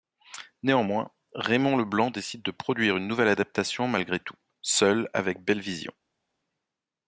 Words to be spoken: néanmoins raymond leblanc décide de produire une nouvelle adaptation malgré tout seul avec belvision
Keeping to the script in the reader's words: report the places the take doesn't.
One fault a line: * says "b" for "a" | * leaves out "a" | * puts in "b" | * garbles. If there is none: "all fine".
all fine